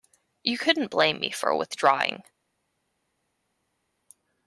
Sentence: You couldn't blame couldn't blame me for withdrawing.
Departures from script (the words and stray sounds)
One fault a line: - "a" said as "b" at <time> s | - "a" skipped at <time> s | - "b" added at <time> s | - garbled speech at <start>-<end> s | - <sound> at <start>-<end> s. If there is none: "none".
- "couldn't blame" skipped at 1.2 s